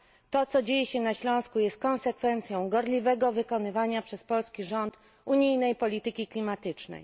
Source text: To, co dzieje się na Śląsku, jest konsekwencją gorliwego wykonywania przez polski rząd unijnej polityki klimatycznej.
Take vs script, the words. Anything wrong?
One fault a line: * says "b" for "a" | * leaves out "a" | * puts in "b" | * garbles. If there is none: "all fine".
all fine